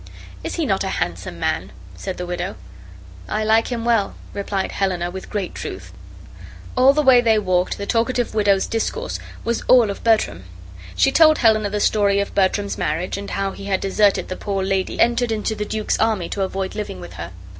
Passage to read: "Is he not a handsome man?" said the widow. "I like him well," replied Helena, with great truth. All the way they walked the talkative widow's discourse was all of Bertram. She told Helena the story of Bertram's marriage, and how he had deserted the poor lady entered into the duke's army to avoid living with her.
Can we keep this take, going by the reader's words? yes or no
yes